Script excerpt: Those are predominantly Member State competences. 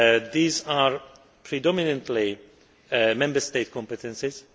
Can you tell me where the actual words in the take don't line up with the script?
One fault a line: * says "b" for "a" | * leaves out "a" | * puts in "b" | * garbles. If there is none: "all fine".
* says "These" for "Those"